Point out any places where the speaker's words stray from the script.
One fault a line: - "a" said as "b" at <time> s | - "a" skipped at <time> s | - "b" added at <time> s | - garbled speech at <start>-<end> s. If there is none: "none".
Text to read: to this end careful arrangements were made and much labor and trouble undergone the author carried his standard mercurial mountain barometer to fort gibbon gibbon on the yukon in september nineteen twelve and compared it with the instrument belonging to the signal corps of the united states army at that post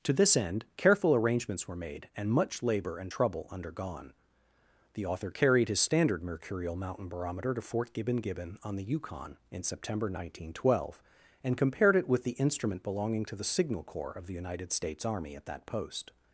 none